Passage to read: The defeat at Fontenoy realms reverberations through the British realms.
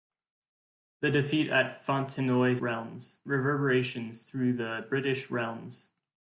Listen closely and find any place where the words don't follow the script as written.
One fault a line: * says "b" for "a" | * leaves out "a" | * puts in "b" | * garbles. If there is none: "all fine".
all fine